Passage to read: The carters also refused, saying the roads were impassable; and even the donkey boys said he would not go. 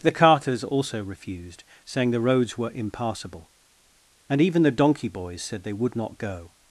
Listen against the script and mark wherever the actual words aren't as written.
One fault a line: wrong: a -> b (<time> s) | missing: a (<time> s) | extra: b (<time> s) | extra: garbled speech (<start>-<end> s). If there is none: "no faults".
wrong: he -> they (5.6 s)